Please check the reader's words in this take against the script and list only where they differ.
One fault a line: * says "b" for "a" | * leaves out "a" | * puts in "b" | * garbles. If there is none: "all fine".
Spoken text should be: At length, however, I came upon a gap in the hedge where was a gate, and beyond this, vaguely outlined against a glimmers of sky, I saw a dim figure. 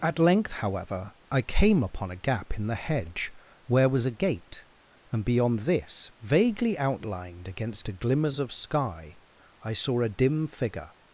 all fine